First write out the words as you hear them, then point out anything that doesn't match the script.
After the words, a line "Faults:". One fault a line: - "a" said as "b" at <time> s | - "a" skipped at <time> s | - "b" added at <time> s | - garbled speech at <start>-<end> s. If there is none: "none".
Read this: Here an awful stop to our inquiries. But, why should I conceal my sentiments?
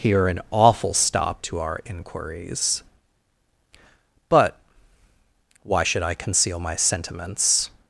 Here an awful stop to our inquiries. But, why should I conceal my sentiments?
Faults:
none